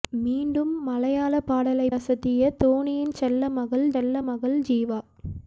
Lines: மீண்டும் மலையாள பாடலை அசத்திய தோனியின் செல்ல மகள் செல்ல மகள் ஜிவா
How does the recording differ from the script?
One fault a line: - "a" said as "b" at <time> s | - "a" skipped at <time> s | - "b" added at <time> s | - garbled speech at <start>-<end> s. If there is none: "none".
none